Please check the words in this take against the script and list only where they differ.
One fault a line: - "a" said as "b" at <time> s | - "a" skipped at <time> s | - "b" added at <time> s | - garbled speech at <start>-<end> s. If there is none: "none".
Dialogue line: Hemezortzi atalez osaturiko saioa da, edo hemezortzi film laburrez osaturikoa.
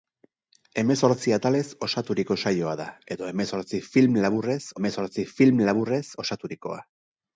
- "hemezortzi film laburrez" added at 4.8 s